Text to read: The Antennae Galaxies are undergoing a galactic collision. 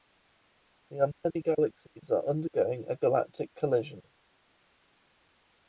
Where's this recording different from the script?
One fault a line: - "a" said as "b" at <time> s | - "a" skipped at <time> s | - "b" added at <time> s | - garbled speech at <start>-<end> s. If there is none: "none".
none